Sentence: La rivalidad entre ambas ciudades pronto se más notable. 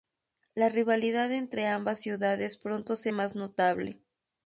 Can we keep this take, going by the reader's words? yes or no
yes